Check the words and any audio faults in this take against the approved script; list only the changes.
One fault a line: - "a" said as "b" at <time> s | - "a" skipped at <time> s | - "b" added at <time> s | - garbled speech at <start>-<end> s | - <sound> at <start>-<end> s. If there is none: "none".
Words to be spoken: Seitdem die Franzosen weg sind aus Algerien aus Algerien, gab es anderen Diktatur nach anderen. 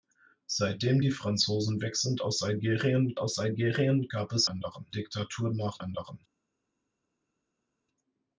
none